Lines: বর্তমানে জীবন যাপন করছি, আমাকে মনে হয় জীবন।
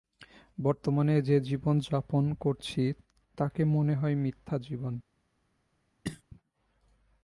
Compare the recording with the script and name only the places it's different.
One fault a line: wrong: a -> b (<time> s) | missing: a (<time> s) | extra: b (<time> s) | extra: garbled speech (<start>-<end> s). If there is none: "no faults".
extra: যে (1.2 s)
wrong: আমাকে -> তাকে (3.4 s)
extra: মিথ্যা (4.2 s)